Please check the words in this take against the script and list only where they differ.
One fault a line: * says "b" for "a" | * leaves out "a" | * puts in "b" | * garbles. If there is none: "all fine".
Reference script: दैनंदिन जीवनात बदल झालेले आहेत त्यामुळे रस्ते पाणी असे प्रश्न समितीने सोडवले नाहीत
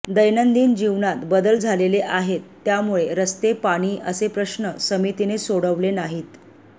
all fine